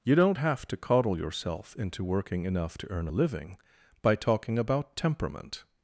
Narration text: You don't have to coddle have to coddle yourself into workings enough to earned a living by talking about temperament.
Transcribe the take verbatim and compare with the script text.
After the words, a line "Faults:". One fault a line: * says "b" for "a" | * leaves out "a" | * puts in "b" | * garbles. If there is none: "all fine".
You don't have to coddle yourself into working enough to earn a living by talking about temperament.
Faults:
* leaves out "have to coddle"
* says "working" for "workings"
* says "earn" for "earned"